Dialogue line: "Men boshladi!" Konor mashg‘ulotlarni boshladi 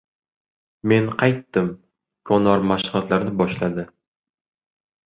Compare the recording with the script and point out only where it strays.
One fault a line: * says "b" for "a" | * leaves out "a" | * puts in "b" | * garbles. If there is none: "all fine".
* says "qaytdim" for "boshladi"